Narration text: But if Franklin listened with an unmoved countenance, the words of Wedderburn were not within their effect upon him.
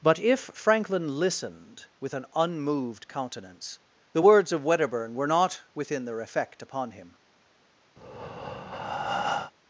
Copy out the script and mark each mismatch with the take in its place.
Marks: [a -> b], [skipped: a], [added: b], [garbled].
But if Franklin listened with an unmoved countenance, the words of Wedderburn were not within their effect upon him.